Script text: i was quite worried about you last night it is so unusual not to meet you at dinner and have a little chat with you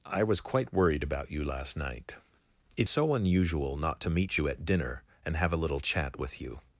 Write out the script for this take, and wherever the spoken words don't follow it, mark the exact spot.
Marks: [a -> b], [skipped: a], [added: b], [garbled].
i was quite worried about you last night it [skipped: is] so unusual not to meet you at dinner and have a little chat with you